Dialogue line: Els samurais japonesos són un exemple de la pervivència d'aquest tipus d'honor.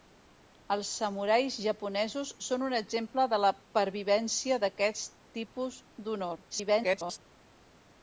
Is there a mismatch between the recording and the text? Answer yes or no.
yes